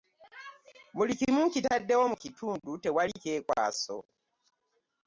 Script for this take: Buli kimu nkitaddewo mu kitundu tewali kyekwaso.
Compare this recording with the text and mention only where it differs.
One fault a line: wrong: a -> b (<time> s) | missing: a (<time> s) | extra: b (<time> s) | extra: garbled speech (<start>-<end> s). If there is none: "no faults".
no faults